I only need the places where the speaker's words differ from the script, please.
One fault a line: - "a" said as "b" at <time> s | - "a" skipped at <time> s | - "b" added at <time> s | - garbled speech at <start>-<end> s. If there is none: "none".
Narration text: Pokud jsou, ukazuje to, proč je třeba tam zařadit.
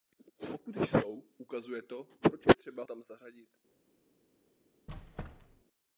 none